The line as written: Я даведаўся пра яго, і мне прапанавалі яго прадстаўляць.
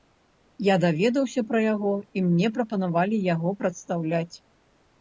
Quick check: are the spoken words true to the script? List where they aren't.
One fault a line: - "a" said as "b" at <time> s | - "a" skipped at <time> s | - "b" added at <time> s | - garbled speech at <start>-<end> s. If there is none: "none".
none